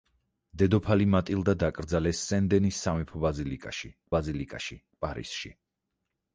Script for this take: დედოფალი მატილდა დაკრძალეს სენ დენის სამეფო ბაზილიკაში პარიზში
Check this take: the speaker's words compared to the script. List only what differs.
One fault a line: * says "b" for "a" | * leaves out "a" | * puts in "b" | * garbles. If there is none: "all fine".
* puts in "ბაზილიკაში"